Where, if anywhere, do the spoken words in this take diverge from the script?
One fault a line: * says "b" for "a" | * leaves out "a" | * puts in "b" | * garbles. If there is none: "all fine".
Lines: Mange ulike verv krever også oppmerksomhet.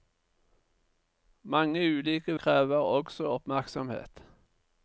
* leaves out "verv"